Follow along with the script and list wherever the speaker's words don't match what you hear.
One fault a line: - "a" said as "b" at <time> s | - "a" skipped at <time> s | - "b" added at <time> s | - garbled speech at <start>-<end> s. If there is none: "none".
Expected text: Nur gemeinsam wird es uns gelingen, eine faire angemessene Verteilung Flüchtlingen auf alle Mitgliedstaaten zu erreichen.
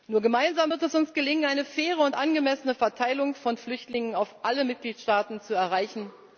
- "und" added at 2.0 s
- "von" added at 3.3 s